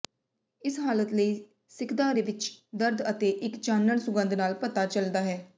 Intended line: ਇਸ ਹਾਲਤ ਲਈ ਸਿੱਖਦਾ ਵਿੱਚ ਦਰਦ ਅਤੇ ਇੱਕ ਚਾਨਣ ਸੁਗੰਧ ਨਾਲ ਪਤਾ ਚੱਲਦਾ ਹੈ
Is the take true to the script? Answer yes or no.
yes